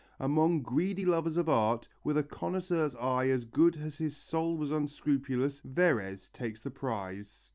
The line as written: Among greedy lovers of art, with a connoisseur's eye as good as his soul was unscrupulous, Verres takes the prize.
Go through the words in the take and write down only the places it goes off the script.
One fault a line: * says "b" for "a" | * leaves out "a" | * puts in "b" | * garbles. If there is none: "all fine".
all fine